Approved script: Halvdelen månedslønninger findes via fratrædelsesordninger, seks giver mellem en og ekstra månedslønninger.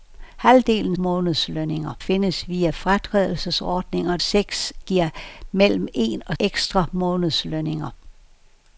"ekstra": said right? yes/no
yes